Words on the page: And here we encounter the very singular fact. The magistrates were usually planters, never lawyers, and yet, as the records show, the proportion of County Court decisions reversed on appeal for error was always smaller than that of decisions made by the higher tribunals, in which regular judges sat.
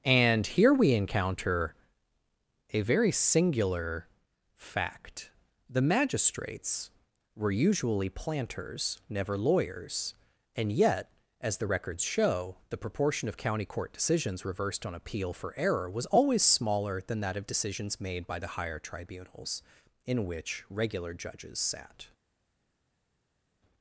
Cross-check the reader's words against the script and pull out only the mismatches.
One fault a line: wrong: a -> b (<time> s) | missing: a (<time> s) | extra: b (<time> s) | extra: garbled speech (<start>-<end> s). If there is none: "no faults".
wrong: the -> a (2.7 s)